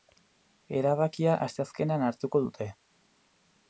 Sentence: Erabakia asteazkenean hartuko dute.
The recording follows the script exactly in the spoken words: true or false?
true